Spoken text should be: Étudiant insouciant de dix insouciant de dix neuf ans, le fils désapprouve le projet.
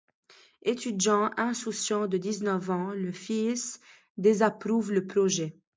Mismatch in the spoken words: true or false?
true